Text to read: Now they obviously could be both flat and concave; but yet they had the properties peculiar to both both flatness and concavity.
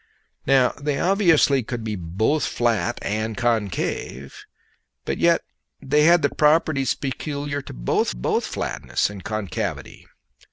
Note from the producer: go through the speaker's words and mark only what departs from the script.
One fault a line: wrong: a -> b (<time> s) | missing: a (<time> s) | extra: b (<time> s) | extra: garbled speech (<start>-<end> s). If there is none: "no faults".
no faults